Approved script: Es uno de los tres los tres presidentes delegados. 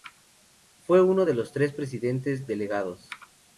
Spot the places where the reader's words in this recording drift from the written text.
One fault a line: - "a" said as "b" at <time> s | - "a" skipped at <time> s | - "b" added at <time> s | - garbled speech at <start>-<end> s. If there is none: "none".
- "Es" said as "Fue" at 0.8 s
- "los tres" skipped at 1.7 s